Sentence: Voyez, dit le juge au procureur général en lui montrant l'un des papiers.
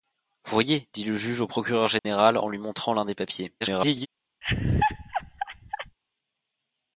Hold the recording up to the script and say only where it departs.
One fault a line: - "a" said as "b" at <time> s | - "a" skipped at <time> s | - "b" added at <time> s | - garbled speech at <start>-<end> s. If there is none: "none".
- garbled speech at 3.6-4.1 s